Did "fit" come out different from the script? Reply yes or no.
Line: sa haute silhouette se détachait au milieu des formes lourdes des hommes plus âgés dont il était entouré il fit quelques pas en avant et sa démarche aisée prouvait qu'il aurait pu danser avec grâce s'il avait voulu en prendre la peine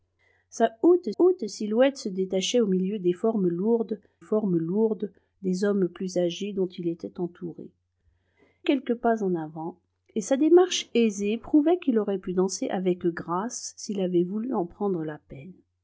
yes